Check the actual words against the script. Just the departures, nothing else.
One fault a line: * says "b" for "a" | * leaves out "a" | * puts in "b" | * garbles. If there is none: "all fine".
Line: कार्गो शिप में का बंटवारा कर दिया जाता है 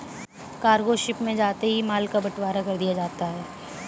* puts in "जाते ही माल"